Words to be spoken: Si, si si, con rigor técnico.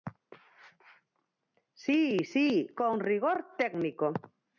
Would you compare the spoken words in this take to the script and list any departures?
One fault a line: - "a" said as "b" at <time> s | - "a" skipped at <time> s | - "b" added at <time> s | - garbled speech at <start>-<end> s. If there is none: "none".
- "si" skipped at 2.7 s